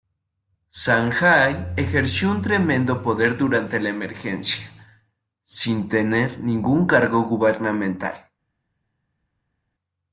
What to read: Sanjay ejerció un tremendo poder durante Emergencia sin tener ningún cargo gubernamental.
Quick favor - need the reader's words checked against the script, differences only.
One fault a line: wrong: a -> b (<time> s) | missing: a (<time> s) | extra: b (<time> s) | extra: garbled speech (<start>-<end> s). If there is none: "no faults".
extra: La (3.8 s)